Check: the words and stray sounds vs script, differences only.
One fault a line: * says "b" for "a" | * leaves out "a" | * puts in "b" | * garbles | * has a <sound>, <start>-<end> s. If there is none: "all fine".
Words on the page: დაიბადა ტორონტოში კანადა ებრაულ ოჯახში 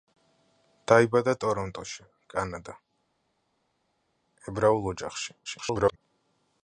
* garbles